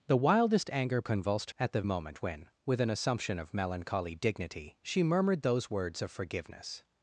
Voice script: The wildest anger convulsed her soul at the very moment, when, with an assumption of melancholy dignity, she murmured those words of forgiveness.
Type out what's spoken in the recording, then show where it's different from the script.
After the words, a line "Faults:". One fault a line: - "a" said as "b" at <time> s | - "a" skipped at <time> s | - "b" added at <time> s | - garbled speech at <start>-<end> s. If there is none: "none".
The wildest anger convulsed at the moment, when, with an assumption of melancholy dignity, she murmured those words of forgiveness.
Faults:
- "her soul" skipped at 1.5 s
- "very" skipped at 1.8 s